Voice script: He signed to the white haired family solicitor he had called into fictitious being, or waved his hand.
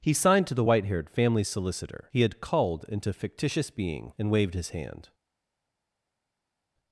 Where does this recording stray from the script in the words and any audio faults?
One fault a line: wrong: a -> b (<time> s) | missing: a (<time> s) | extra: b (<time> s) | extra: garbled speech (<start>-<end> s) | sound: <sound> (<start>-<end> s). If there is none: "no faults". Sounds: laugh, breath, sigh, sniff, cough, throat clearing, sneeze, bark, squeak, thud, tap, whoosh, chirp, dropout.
wrong: or -> and (4.2 s)